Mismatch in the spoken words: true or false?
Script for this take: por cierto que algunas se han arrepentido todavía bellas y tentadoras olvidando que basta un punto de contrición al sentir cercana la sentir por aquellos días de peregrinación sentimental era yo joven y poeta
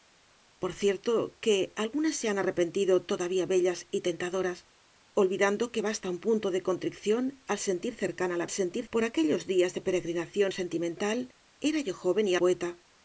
false